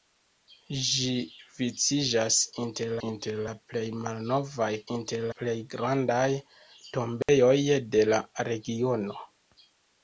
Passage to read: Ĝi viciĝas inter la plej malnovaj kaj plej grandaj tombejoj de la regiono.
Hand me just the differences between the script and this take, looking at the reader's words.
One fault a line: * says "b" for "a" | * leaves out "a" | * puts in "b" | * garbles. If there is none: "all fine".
* puts in "inter"
* says "inter" for "kaj"